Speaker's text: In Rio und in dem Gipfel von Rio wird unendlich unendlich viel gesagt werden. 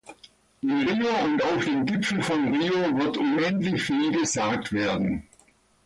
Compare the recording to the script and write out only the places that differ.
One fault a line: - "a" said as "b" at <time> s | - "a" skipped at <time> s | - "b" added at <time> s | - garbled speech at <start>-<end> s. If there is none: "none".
- "in" said as "auf" at 1.4 s
- "unendlich" skipped at 3.8 s